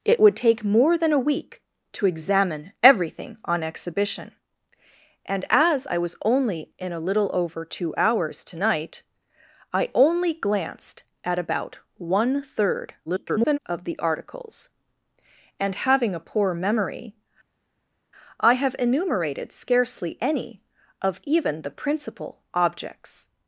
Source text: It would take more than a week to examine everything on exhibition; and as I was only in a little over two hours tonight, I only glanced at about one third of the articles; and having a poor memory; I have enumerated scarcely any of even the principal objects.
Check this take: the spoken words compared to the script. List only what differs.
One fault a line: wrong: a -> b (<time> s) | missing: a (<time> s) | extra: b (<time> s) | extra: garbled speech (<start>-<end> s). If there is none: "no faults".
extra: garbled speech (13.1-13.6 s)